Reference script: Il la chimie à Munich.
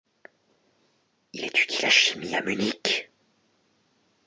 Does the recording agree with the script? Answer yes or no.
no